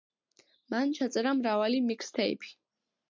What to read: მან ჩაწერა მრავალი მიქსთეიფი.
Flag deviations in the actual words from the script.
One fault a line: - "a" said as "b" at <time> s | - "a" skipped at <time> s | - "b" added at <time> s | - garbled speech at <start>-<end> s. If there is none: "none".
none